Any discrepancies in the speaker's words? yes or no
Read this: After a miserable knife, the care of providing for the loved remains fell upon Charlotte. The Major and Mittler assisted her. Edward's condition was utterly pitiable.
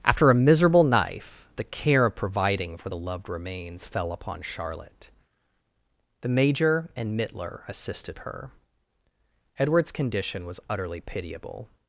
no